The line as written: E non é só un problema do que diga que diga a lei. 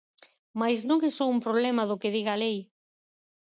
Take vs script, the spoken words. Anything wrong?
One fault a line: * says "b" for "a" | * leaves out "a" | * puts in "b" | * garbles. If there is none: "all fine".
* says "Mais" for "E"
* leaves out "que diga"